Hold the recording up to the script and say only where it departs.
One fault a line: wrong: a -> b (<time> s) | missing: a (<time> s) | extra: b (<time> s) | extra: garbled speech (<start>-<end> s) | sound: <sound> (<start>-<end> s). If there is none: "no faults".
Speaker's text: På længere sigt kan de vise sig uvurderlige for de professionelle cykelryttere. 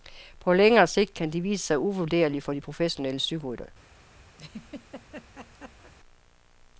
sound: laugh (4.4-5.9 s)